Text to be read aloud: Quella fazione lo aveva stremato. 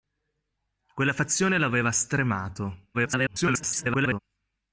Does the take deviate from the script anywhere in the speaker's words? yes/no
yes